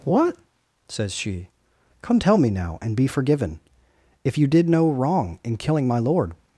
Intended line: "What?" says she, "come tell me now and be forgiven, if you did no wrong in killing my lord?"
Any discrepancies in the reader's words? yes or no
no